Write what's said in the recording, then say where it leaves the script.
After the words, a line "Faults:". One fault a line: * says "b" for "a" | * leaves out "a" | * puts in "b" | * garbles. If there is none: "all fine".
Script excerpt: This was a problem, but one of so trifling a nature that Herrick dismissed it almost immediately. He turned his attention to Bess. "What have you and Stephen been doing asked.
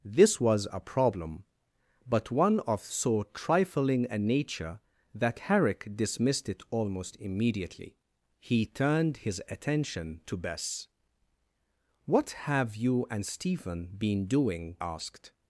This was a problem, but one of so trifling a nature that Herrick dismissed it almost immediately. He turned his attention to Bess. "What have you and Stephen been doing asked.
Faults:
all fine